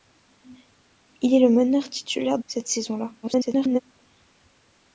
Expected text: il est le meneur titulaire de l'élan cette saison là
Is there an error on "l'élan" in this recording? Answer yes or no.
yes